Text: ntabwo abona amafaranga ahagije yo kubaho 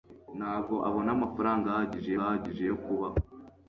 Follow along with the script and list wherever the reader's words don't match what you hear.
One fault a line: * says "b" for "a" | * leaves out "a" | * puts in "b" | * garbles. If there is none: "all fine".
* puts in "ahagije"